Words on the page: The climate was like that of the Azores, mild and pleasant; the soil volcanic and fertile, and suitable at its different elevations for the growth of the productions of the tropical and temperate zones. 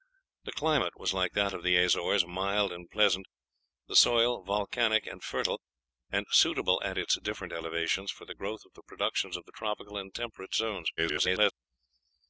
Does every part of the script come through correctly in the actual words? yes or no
no